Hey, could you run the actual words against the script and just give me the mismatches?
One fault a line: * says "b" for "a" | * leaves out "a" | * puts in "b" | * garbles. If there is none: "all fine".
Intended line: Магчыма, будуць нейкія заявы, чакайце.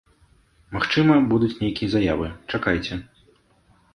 all fine